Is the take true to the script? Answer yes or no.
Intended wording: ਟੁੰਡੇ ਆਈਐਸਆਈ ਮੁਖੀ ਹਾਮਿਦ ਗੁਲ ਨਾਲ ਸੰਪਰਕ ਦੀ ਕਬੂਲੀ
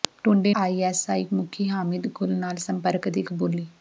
yes